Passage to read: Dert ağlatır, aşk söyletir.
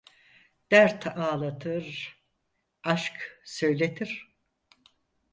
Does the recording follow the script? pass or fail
pass